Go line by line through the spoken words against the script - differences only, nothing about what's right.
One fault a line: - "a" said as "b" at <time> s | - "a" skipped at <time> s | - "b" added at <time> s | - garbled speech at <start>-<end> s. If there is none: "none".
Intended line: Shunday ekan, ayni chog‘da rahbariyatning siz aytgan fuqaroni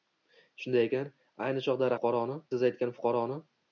- "rahbariyatning" said as "fuqaroni" at 2.0 s